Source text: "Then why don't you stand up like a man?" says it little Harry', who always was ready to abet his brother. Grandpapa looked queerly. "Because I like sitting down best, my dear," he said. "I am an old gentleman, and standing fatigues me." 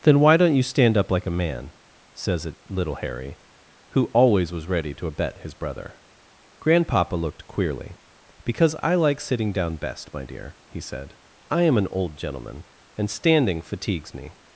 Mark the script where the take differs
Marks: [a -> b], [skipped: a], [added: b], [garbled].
"Then why don't you stand up like a man?" says it little Harry', who always was ready to abet his brother. Grandpapa looked queerly. "Because I like sitting down best, my dear," he said. "I am an old gentleman, and standing fatigues me."